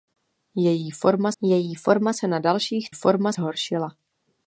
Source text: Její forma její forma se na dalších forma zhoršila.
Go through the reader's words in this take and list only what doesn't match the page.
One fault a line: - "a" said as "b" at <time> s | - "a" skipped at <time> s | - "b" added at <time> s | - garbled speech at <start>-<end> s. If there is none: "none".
none